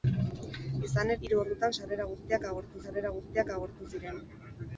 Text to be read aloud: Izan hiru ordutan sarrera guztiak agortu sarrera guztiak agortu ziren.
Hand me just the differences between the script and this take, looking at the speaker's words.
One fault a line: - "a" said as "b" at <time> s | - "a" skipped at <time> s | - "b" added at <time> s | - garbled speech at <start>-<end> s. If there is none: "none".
none